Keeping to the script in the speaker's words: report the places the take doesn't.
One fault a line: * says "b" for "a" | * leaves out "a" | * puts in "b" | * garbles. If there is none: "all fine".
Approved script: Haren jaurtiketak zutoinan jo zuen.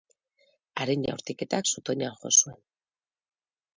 all fine